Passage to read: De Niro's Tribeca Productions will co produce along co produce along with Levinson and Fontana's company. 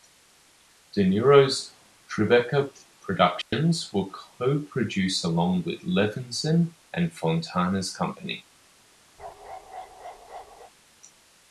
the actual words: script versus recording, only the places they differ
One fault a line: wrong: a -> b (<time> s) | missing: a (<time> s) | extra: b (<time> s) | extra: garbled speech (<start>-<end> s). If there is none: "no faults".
missing: co produce along (5.6 s)